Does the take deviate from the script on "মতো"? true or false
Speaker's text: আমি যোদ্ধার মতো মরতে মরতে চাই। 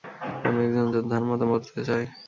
false